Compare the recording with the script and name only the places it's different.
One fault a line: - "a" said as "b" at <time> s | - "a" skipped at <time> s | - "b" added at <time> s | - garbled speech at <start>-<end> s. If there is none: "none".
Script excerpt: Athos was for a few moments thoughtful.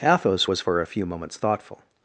none